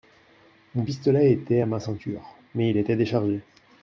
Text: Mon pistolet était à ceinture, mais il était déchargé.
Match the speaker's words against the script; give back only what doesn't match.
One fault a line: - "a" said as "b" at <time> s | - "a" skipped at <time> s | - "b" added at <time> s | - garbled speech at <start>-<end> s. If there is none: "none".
- "ma" added at 1.6 s